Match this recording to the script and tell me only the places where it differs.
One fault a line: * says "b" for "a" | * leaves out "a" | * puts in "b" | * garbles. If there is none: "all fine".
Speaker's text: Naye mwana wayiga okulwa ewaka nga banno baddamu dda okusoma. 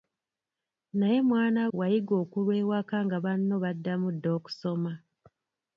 all fine